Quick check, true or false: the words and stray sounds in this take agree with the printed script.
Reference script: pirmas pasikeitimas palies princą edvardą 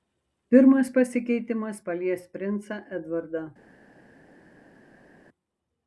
true